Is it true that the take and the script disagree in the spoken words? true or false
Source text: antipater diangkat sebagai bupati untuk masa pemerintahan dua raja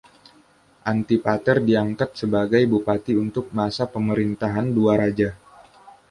false